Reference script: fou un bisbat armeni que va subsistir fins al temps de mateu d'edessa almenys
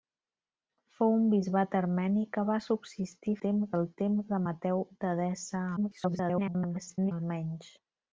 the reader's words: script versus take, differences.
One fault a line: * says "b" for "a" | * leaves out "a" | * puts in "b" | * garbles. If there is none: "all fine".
* says "temps" for "fins"
* garbles